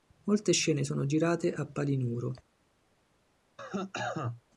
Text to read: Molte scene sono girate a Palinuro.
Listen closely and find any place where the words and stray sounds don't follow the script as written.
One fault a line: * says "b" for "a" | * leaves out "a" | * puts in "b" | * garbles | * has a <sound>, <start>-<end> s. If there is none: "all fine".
* has a cough, 3.6-4.4 s